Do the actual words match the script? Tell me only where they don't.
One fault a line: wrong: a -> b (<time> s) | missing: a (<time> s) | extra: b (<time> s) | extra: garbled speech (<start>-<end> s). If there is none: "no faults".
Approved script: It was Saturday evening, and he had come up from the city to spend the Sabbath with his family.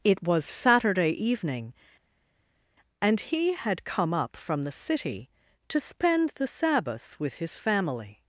no faults